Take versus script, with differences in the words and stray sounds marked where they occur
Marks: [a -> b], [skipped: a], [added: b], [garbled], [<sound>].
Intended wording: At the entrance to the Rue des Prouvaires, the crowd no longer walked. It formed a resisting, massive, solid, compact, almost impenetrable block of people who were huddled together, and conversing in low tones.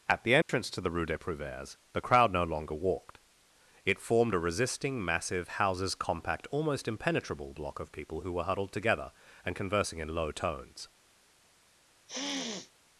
At the entrance [dropout] to the Rue des Prouvaires, the crowd no longer walked. It formed a resisting, massive, [solid, -> houses] compact, almost impenetrable block of people who were huddled together, and conversing in low tones. [sniff]